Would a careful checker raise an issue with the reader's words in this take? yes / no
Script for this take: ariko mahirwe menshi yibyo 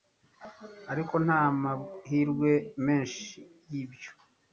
yes